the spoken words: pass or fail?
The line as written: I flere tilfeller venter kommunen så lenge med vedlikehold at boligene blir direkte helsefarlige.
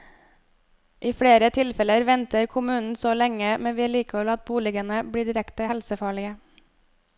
pass